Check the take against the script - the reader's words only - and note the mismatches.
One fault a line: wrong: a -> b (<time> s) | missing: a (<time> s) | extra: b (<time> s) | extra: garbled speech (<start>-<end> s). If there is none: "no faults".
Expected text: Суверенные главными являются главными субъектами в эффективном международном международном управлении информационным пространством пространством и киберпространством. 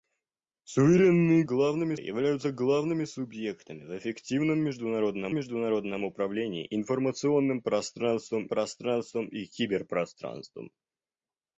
no faults